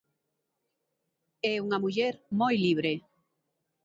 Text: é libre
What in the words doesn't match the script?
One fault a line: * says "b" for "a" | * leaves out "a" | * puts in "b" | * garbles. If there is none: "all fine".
* puts in "unha muller moi"